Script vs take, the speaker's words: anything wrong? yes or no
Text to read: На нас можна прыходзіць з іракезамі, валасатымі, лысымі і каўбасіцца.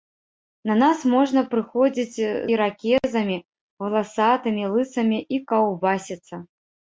yes